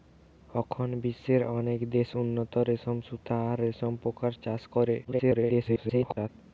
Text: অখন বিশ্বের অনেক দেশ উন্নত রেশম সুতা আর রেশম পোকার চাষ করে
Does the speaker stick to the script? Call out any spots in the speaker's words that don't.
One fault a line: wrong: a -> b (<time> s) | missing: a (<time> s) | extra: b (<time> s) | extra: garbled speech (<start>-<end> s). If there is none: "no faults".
extra: garbled speech (5.0-6.3 s)